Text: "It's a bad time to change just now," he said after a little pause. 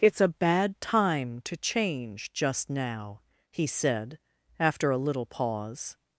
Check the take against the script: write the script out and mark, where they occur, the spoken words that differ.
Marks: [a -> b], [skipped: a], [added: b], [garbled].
"It's a bad time to change just now," he said after a little pause.